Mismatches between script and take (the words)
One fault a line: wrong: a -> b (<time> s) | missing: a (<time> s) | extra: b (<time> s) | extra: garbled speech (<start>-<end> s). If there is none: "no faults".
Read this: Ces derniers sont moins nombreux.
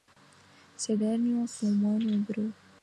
no faults